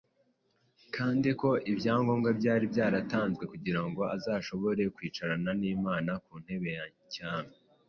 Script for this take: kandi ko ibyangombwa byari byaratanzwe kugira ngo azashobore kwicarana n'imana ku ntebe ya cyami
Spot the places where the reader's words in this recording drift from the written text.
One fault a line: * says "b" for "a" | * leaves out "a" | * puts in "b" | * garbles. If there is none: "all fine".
all fine